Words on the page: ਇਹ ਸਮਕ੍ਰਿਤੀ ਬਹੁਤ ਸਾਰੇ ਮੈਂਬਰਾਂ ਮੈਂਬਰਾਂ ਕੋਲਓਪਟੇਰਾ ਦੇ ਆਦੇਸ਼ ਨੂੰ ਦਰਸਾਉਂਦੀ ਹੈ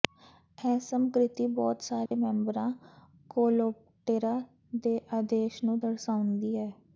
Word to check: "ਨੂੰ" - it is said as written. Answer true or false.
true